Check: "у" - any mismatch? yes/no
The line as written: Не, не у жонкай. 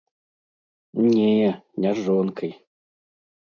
yes